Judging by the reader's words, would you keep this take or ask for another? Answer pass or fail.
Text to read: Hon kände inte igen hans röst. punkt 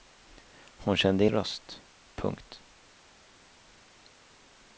fail